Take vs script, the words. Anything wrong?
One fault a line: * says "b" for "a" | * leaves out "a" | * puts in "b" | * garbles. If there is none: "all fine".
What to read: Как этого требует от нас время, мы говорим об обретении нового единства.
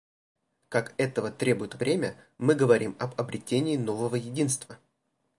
* leaves out "нас"